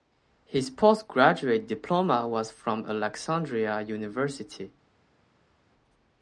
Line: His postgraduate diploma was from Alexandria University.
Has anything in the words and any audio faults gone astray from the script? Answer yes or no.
no